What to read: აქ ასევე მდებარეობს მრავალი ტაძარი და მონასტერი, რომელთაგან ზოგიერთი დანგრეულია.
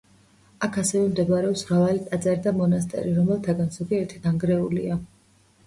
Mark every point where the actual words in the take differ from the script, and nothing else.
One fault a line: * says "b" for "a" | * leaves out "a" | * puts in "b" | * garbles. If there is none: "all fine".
all fine